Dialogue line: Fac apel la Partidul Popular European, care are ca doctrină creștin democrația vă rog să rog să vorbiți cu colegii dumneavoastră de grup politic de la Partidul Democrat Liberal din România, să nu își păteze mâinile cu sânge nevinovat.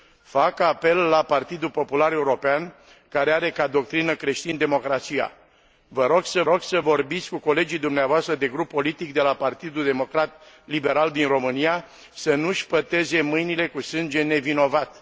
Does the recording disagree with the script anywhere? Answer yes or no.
no